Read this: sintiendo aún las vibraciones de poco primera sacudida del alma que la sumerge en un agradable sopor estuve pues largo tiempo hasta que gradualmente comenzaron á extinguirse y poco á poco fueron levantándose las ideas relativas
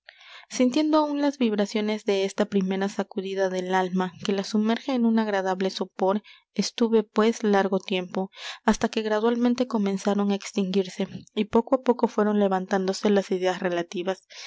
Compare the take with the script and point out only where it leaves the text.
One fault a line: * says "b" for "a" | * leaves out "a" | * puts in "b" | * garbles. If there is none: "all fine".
* says "esta" for "poco"